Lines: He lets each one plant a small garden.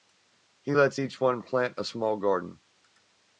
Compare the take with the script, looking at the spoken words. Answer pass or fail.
pass